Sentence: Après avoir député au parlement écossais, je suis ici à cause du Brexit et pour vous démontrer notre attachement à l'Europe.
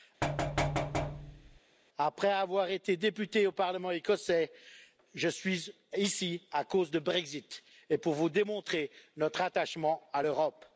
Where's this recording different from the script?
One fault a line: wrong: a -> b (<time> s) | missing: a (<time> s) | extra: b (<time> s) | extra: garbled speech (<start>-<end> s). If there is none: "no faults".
extra: été (2.7 s)